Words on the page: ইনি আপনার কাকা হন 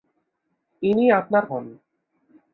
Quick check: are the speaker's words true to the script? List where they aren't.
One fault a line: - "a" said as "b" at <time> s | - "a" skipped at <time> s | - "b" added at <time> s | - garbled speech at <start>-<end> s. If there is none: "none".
- "কাকা" skipped at 1.4 s